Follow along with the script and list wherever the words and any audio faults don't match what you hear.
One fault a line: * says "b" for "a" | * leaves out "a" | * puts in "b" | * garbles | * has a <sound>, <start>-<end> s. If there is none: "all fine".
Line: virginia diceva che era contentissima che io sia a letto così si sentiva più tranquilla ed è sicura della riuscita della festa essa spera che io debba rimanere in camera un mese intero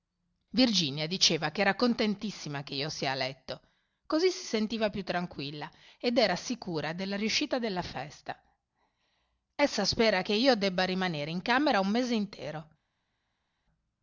* says "era" for "è"